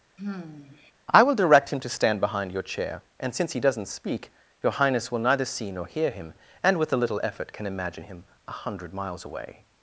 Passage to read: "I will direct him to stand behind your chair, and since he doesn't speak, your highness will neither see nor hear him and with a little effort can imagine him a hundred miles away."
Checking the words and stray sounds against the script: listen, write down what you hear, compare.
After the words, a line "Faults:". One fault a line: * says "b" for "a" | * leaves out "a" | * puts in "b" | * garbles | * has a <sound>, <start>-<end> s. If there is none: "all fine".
"I will direct him to stand behind your chair, and since he doesn't speak, your highness will neither see nor hear him and with a little effort can imagine him a hundred miles away."
Faults:
* has a sigh, 0.2-0.9 s